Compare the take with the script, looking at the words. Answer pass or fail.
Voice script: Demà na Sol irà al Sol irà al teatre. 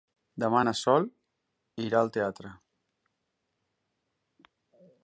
fail